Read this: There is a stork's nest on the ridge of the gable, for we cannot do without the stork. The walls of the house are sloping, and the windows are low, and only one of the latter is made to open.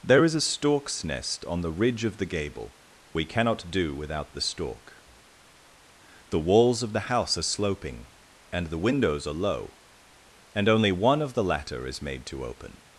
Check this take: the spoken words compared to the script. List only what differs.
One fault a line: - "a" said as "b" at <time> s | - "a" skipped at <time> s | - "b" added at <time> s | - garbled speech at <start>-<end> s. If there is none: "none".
- "for" skipped at 2.7 s